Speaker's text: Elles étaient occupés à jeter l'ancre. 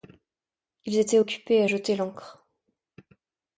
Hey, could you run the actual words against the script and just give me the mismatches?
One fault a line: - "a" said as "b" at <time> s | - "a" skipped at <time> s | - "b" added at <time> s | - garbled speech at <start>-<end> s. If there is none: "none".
- "Elles" said as "Ils" at 0.8 s